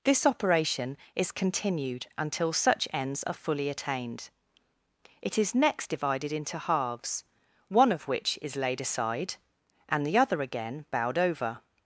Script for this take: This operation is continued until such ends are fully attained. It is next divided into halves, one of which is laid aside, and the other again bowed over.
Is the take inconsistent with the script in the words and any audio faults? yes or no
no